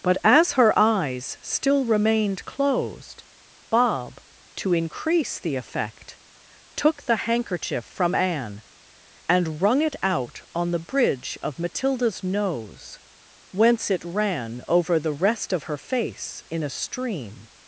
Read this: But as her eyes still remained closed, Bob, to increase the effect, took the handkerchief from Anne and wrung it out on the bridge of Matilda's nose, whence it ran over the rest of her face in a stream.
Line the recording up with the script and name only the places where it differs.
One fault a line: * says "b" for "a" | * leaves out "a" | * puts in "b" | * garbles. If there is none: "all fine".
all fine